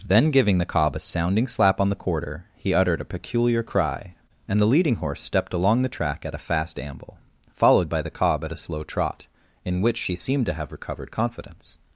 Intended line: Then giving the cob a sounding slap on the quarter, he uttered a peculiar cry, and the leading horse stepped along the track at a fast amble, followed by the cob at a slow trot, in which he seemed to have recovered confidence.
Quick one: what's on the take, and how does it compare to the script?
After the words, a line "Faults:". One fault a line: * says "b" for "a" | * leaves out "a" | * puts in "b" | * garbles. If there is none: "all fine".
Then giving the cob a sounding slap on the quarter, he uttered a peculiar cry, and the leading horse stepped along the track at a fast amble, followed by the cob at a slow trot, in which she seemed to have recovered confidence.
Faults:
* says "she" for "he"